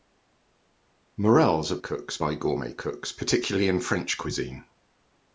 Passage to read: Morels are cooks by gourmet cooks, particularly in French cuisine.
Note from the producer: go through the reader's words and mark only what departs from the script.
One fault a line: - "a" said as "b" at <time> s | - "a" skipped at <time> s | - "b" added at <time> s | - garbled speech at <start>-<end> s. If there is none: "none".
none